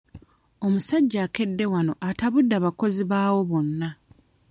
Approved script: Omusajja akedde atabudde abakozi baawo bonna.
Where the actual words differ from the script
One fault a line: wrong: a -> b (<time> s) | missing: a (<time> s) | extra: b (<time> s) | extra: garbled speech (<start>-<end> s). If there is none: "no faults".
extra: wano (1.7 s)